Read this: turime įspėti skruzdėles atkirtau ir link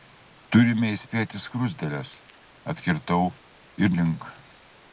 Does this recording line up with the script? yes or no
yes